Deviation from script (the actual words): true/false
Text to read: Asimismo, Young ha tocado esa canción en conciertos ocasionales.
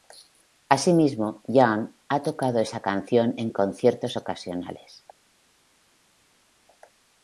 false